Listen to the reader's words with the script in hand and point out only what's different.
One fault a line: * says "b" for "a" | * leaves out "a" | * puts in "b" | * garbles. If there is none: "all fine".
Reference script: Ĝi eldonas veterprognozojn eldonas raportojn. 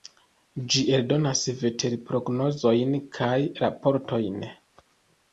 * says "kaj" for "eldonas"